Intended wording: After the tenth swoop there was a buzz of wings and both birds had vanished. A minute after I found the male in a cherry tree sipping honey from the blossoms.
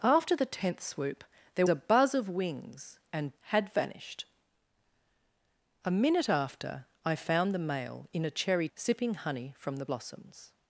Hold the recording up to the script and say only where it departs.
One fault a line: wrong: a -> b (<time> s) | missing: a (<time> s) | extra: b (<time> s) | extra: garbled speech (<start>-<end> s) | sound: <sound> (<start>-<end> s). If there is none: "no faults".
missing: was (1.7 s)
missing: both birds (3.3 s)
missing: tree (8.7 s)